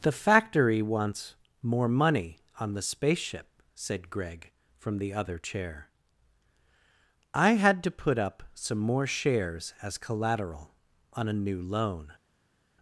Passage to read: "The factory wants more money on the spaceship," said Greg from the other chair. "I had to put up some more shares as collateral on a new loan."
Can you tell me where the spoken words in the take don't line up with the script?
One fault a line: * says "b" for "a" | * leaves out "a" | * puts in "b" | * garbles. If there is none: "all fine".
all fine